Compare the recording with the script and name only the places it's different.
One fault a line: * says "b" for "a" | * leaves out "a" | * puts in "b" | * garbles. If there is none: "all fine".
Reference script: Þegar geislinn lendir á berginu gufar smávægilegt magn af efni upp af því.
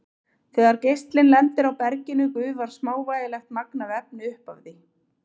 all fine